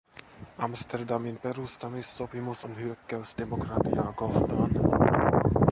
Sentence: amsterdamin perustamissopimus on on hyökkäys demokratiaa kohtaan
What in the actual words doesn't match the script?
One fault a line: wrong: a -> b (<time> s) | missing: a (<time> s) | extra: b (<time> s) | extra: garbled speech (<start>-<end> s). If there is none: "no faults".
missing: on (2.8 s)